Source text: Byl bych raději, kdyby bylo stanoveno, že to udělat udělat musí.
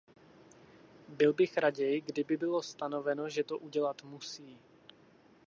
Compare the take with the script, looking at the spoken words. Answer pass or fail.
fail